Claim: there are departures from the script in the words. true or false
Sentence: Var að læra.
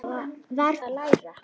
false